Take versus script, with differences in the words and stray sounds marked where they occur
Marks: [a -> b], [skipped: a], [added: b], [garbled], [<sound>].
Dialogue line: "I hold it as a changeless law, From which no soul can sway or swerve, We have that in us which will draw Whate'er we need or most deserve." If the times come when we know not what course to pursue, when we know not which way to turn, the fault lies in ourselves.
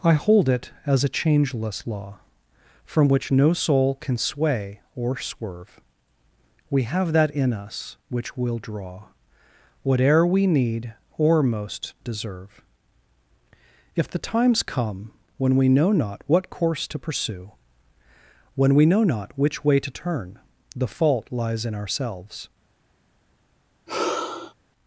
"I hold it as a changeless law, From which no soul can sway or swerve, We have that in us which will draw Whate'er we need or most deserve." If the times come when we know not what course to pursue, when we know not which way to turn, the fault lies in ourselves. [sigh]